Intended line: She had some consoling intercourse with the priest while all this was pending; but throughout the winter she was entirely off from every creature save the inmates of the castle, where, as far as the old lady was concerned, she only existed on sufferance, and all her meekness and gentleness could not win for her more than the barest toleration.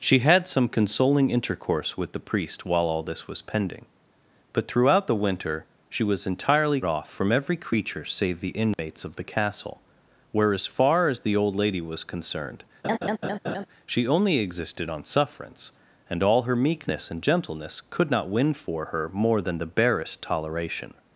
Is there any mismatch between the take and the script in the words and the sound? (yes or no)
yes